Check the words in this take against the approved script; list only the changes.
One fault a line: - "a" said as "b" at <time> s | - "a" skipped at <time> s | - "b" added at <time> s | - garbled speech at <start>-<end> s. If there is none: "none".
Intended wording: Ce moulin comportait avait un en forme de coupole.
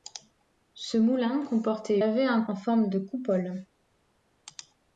none